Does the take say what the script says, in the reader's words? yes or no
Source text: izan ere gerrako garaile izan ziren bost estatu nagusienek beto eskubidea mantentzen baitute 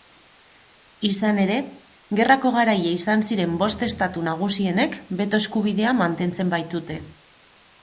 yes